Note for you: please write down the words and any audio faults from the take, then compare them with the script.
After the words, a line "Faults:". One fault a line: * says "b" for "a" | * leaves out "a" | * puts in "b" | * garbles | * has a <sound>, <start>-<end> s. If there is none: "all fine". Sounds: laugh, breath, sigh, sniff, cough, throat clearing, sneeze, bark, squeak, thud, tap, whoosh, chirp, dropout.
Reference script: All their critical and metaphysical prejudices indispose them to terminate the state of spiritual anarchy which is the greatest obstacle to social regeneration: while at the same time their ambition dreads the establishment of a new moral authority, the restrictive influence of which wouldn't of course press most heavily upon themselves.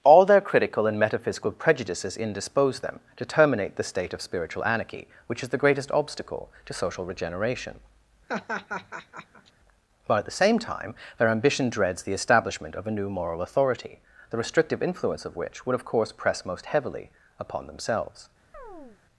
All their critical and metaphysical prejudices indispose them to terminate the state of spiritual anarchy which is the greatest obstacle to social regeneration: while at the same time their ambition dreads the establishment of a new moral authority, the restrictive influence of which would of course press most heavily upon themselves.
Faults:
* has a laugh, 8.3-9.5 s
* says "would" for "wouldn't"
* has a chirp, 18.5-19.0 s